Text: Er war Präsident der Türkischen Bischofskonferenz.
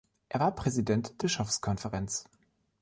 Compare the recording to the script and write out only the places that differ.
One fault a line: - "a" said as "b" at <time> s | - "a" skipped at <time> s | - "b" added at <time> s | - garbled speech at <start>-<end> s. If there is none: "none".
- "der Türkischen" skipped at 1.2 s